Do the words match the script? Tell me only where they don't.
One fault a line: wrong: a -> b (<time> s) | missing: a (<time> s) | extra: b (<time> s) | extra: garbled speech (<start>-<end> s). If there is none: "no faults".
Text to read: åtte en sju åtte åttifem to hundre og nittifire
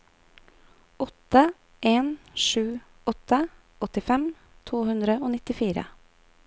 no faults